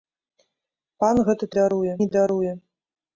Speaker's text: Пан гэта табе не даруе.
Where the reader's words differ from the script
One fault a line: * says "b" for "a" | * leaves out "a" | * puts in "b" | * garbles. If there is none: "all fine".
* says "даруе" for "табе"